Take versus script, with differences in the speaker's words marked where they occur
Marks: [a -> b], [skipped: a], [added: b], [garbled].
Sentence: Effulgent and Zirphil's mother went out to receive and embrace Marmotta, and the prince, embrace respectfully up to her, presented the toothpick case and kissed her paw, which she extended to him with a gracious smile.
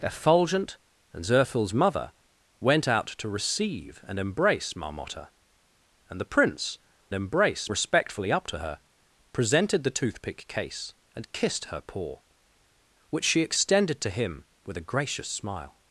Effulgent and Zirphil's mother went out to receive and embrace Marmotta, and the prince, embrace respectfully up to her, presented the toothpick case and kissed her paw, which she extended to him with a gracious smile.